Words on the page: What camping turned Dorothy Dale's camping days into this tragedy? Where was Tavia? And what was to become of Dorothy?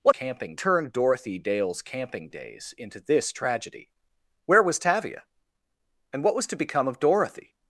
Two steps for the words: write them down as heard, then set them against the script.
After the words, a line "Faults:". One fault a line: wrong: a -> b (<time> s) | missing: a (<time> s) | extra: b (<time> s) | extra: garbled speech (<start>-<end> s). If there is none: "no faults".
What camping turned Dorothy Dale's camping days into this tragedy? Where was Tavia? And what was to become of Dorothy?
Faults:
no faults